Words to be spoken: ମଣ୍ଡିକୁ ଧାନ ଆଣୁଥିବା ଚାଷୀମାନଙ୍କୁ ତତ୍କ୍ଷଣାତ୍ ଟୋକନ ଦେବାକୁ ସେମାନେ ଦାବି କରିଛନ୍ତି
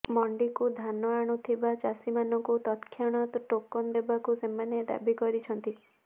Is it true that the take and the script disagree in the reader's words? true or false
false